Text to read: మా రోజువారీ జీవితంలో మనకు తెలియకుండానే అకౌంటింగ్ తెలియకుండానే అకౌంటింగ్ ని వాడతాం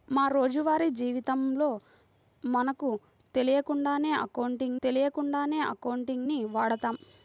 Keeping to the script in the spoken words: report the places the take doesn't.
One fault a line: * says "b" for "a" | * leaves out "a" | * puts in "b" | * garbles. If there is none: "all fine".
all fine